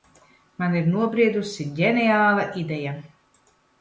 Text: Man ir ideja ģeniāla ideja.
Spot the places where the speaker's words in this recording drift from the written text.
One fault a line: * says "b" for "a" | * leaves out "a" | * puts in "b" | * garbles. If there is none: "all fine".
* says "nobriedusi" for "ideja"